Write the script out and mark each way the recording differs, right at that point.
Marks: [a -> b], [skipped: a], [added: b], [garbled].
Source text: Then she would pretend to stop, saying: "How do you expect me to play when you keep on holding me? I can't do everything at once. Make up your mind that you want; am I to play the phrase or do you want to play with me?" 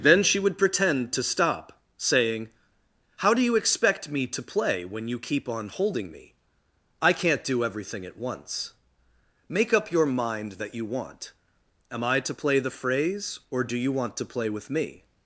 Then she would pretend to stop, saying: "How do you expect me to play when you keep on holding me? I can't do everything at once. Make up your mind that you want; am I to play the phrase or do you want to play with me?"